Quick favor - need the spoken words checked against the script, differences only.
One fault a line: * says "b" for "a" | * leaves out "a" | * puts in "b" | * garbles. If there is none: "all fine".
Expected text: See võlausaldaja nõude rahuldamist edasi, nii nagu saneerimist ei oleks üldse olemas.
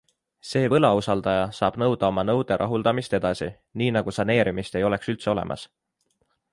* puts in "saab nõuda oma"